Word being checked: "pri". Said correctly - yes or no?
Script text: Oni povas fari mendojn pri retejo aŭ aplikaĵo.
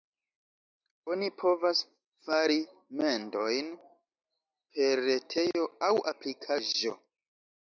no